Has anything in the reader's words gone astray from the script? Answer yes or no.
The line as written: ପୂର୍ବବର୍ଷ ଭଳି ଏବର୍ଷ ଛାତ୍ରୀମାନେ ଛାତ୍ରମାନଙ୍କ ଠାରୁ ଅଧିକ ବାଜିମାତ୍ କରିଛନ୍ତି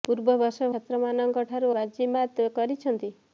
yes